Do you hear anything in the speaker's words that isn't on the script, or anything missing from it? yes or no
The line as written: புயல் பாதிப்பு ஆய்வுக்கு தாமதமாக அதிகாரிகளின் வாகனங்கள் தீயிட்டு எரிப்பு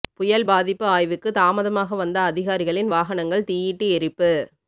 yes